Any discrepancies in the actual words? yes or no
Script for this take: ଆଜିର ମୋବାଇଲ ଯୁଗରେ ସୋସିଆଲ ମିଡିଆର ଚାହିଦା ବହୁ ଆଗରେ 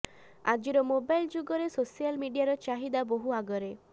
no